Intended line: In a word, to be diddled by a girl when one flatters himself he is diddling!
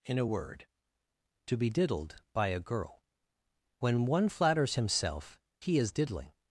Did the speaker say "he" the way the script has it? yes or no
yes